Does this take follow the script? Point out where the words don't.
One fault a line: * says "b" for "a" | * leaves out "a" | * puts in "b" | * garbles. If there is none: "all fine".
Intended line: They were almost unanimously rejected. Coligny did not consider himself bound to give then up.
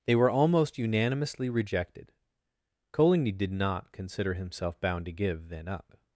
all fine